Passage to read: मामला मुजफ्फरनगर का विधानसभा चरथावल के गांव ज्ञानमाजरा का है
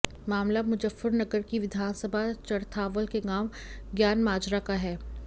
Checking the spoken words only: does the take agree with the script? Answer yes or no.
no